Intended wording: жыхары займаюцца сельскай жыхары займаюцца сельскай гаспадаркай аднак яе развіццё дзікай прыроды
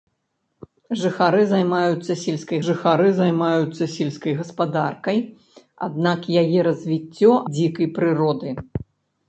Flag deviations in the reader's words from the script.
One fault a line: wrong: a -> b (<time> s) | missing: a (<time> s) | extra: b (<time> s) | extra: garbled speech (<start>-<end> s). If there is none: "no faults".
no faults